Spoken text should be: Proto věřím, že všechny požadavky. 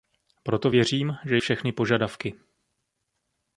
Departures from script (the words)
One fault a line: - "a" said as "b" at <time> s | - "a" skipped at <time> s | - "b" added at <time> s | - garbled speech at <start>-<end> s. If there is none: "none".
none